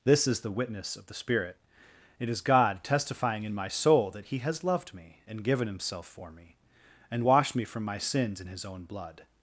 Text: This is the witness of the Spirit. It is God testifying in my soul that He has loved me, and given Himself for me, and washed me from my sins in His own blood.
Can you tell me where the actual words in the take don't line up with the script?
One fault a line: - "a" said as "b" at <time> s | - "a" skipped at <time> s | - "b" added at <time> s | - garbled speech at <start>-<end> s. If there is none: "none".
none